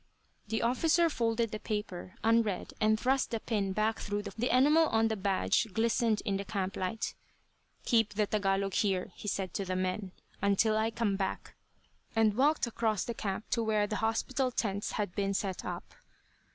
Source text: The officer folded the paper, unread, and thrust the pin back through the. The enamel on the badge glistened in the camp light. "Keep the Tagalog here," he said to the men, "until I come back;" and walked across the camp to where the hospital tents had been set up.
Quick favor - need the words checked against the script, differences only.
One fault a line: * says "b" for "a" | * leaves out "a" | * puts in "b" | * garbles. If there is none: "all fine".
all fine